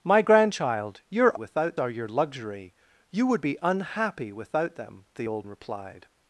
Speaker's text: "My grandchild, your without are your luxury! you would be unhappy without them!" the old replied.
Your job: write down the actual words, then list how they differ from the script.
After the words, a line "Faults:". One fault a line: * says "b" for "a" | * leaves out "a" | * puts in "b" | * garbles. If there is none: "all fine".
"My grandchild, your without are your luxury! you would be unhappy without them!" the old replied.
Faults:
all fine